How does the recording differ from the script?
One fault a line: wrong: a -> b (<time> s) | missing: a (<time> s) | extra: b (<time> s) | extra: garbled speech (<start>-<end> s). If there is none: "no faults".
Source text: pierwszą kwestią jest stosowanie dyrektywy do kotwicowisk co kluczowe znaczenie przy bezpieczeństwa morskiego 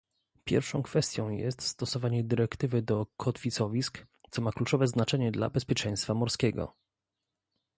extra: ma (4.4 s)
wrong: przy -> dla (5.3 s)